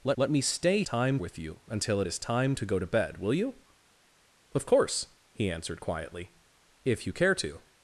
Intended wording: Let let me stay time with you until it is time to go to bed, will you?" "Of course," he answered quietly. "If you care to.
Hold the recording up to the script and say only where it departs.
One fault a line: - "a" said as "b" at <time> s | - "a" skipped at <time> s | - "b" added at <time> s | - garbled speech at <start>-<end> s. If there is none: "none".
none